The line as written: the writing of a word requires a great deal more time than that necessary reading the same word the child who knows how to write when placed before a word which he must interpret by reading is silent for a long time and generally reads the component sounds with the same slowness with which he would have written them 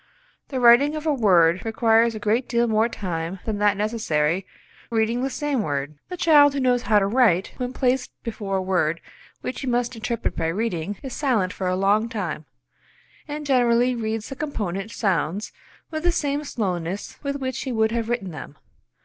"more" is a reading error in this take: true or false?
false